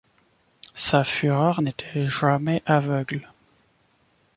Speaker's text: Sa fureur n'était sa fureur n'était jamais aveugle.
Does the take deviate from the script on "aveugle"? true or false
false